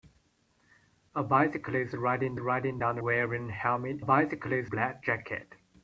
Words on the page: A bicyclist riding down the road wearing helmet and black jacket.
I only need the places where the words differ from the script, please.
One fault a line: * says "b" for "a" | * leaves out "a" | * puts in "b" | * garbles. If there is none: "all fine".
* puts in "riding"
* leaves out "road"
* says "bicyclist" for "and"